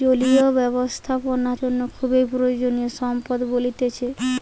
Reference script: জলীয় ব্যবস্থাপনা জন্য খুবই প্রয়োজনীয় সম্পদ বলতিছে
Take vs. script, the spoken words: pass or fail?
pass